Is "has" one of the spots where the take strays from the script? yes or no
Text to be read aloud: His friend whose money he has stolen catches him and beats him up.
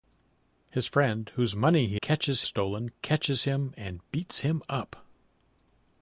yes